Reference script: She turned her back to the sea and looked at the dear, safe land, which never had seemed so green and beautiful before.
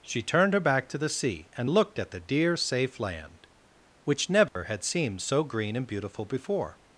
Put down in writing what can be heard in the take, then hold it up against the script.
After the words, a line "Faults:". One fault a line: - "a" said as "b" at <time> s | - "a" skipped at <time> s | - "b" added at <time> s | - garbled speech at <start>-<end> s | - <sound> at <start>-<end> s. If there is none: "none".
She turned her back to the sea and looked at the dear, safe land, which never had seemed so green and beautiful before.
Faults:
- dropout at 4.5-4.6 s